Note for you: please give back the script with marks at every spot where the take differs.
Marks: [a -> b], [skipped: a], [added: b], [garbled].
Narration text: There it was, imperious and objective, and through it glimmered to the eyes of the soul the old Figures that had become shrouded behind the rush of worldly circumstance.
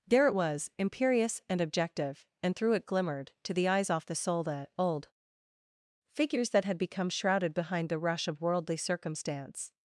There it was, imperious and objective, and through it glimmered to the eyes [of -> off] the soul the old Figures that had become shrouded behind the rush of worldly circumstance.